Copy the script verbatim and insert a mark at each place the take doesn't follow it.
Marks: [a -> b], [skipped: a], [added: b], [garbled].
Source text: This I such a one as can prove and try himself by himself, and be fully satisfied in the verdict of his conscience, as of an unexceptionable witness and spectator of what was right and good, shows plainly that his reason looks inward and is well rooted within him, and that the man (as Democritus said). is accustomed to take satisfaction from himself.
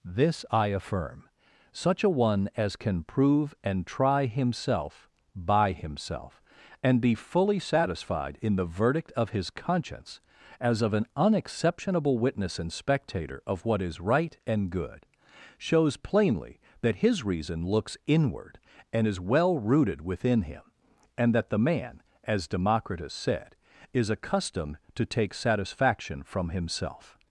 This I [added: affirm] such a one as can prove and try himself by himself, and be fully satisfied in the verdict of his conscience, as of an unexceptionable witness and spectator of what [was -> is] right and good, shows plainly that his reason looks inward and is well rooted within him, and that the man (as Democritus said). is accustomed to take satisfaction from himself.